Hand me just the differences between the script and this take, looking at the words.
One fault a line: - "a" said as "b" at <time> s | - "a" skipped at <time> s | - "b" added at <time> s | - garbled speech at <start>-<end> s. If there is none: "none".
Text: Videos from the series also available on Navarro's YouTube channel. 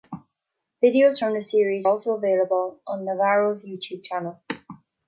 none